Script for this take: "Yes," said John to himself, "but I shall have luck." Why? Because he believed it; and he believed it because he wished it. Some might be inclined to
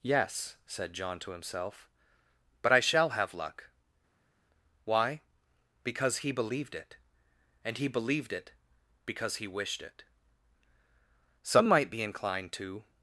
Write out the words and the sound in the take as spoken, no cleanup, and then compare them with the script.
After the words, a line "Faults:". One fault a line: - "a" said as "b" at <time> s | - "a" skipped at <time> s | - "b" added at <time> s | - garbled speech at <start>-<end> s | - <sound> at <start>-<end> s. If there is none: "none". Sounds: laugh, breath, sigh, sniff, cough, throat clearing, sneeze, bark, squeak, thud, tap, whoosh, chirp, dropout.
"Yes," said John to himself, "but I shall have luck." Why? Because he believed it; and he believed it because he wished it. Some might be inclined to
Faults:
none